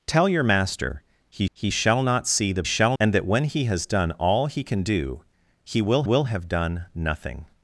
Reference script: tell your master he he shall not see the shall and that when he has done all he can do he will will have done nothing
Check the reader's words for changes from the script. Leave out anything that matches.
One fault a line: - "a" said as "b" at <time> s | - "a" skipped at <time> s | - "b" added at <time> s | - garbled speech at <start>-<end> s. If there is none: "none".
none